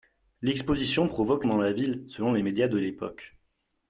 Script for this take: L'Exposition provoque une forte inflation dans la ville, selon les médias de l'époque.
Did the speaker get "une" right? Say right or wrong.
wrong